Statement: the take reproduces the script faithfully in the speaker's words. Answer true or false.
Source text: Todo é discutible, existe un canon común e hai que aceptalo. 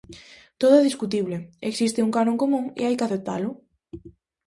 true